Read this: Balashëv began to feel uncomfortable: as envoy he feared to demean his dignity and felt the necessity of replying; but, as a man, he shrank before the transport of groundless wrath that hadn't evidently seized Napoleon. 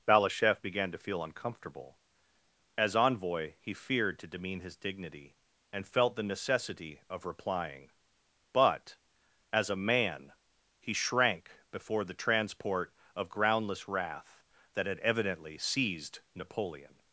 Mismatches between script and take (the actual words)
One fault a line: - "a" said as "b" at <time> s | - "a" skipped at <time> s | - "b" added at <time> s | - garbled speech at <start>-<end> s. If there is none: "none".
- "hadn't" said as "had" at 14.9 s